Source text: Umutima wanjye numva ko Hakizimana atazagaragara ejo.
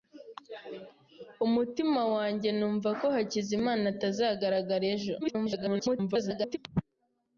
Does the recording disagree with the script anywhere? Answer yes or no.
yes